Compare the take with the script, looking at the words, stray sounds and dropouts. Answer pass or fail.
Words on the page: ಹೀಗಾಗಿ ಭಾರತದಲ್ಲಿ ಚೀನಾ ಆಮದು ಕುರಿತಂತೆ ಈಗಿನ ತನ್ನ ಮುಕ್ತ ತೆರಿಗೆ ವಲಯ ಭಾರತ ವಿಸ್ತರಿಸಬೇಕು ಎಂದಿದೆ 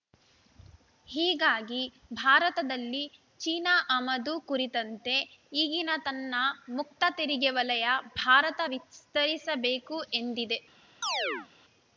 fail